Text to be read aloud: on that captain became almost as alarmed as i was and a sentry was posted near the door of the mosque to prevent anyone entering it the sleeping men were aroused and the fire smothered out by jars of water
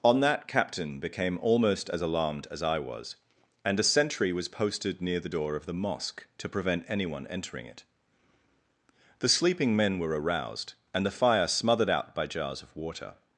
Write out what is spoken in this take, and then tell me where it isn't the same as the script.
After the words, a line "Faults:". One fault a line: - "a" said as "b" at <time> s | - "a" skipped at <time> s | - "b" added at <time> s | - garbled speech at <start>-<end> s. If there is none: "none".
on that captain became almost as alarmed as i was and a sentry was posted near the door of the mosque to prevent anyone entering it the sleeping men were aroused and the fire smothered out by jars of water
Faults:
none